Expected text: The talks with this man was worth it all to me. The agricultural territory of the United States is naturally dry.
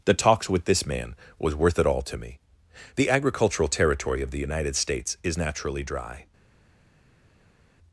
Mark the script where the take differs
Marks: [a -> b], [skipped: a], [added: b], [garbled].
The talks with this man was worth it all to me. The agricultural territory of the United States is naturally dry.